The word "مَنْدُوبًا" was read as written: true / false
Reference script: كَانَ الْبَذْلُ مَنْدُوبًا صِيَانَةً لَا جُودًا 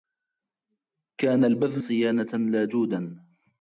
false